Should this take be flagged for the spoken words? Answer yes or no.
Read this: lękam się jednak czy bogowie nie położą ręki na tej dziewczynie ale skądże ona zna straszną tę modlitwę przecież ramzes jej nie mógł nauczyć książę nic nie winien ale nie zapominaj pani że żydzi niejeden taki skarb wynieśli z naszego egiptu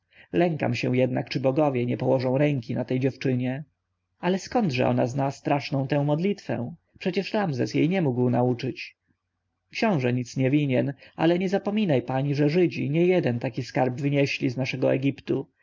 no